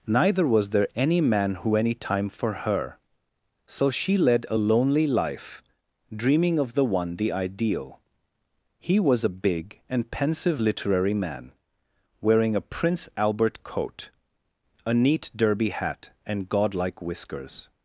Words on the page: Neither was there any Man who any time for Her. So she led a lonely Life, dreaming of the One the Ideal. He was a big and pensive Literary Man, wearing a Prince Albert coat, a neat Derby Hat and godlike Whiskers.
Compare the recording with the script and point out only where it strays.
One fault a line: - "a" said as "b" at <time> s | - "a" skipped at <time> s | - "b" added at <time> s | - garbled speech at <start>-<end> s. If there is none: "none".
none